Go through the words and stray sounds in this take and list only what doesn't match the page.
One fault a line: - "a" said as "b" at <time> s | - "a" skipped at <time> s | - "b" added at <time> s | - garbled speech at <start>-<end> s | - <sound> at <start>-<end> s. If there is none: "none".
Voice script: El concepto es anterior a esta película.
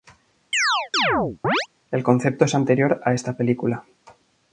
- chirp at 0.5-1.7 s